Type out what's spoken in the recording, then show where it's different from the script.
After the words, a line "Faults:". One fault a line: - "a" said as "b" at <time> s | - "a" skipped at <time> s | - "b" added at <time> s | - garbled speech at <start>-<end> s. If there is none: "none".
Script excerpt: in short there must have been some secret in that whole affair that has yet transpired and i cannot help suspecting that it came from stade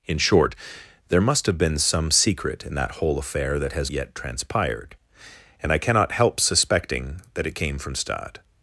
in short there must have been some secret in that whole affair that has yet transpired and i cannot help suspecting that it came from stade
Faults:
none